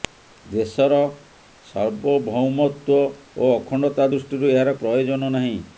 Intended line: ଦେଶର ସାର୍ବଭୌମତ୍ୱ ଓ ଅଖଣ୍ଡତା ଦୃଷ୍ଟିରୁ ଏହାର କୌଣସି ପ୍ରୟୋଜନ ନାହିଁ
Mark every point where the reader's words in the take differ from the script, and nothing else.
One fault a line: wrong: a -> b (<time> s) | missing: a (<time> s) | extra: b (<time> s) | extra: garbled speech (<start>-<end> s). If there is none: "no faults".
missing: କୌଣସି (4.8 s)